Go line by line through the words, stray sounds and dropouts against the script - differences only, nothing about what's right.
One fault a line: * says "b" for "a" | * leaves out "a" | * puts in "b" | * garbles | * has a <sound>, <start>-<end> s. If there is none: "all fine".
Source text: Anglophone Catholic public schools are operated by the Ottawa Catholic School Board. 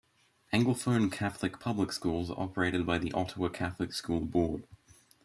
all fine